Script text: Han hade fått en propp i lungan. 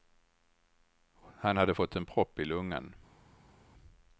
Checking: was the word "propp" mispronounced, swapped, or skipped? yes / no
no